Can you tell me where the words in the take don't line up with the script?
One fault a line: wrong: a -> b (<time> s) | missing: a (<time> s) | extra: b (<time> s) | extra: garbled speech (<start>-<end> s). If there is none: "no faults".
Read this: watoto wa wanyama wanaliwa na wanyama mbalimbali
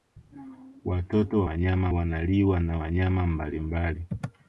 no faults